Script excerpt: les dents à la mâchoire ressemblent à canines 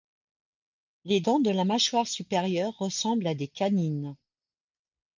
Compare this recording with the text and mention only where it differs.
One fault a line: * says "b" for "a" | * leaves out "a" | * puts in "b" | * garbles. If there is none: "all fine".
* says "de" for "à"
* puts in "supérieure"
* puts in "des"